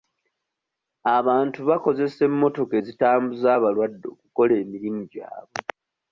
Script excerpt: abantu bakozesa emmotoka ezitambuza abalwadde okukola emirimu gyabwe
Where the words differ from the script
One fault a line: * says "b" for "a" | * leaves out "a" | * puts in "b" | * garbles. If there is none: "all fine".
all fine